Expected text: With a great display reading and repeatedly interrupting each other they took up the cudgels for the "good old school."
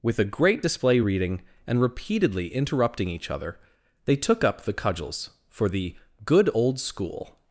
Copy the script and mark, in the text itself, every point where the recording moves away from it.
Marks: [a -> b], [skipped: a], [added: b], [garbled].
With a great display reading and repeatedly interrupting each other they took up the cudgels for the "good old school."